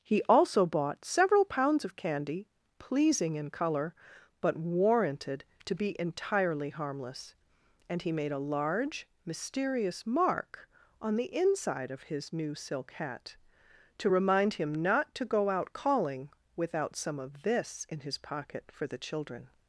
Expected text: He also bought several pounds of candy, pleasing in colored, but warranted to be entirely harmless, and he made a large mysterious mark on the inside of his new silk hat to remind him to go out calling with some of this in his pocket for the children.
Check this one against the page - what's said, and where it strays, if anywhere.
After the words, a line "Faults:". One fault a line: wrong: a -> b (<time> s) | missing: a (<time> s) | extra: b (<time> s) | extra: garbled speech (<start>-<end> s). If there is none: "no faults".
He also bought several pounds of candy, pleasing in color, but warranted to be entirely harmless, and he made a large mysterious mark on the inside of his new silk hat to remind him not to go out calling without some of this in his pocket for the children.
Faults:
wrong: colored -> color (3.5 s)
extra: not (14.7 s)
wrong: with -> without (16.6 s)